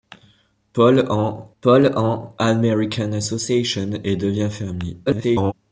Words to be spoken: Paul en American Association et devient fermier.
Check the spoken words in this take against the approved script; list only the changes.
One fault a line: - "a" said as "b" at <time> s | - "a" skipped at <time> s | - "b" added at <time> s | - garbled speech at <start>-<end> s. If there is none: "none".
- "paul en" added at 1.6 s
- garbled speech at 5.1-5.5 s